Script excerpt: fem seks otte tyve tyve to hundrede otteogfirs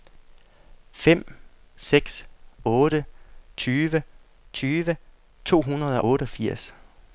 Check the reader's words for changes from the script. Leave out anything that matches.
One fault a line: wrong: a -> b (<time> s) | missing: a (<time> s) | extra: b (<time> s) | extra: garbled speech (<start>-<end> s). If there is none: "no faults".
no faults